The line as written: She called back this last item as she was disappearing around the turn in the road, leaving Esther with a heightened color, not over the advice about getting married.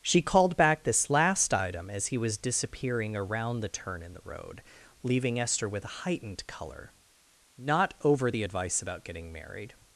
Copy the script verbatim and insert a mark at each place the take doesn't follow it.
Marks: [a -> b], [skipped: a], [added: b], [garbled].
She called back this last item as [she -> he] was disappearing around the turn in the road, leaving Esther with a heightened color, not over the advice about getting married.